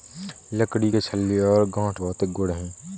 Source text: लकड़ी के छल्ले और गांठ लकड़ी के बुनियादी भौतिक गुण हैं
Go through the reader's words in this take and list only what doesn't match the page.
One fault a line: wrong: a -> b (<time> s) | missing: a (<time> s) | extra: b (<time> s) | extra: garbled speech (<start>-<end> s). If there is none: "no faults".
missing: लकड़ी के बुनियादी (2.0 s)